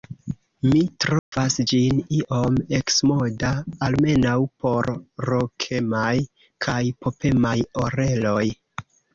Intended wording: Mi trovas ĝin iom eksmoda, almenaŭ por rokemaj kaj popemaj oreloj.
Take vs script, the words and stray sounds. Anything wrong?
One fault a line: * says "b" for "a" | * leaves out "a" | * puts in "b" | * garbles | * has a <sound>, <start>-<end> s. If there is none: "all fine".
* has a dropout, 1.2-1.3 s